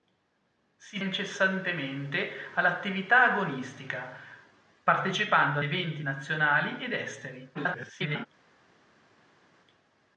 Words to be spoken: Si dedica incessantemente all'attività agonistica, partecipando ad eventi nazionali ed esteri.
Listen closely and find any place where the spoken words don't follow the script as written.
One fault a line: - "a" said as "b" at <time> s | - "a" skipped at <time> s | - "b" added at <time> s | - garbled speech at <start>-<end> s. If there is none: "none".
- "dedica" skipped at 1.0 s
- "ad" skipped at 5.6 s
- garbled speech at 7.5-8.3 s